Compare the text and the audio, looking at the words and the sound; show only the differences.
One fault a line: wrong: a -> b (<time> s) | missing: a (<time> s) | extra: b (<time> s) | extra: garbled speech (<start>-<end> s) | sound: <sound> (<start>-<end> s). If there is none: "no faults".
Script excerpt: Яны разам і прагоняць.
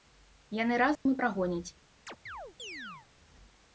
sound: dropout (1.0-1.1 s)
sound: chirp (2.1-3.1 s)